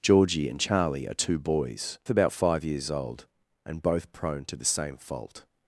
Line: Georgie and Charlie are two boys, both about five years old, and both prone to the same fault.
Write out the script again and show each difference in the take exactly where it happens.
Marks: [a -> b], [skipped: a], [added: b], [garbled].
Georgie and Charlie are two boys, [skipped: both] about five years old, and both prone to the same fault.